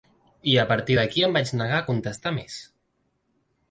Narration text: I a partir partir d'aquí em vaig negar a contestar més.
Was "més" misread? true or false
false